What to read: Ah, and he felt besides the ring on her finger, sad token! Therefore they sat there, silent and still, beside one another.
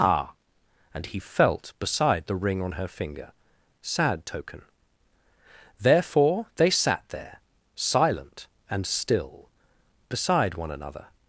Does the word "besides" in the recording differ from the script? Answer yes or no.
yes